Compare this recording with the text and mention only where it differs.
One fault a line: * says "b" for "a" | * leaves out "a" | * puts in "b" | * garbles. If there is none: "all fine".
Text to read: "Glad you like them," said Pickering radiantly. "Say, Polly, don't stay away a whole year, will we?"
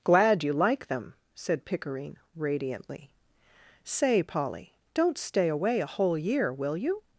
* says "you" for "we"